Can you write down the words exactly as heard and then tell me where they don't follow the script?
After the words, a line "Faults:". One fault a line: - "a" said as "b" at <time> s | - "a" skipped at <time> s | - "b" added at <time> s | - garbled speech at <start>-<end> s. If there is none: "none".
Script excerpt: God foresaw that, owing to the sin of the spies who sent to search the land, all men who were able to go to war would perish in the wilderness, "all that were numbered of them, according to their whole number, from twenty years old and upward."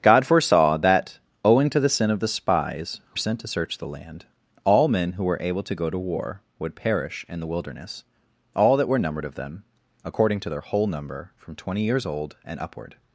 God foresaw that, owing to the sin of the spies who sent to search the land, all men who were able to go to war would perish in the wilderness, "all that were numbered of them, according to their whole number, from twenty years old and upward."
Faults:
none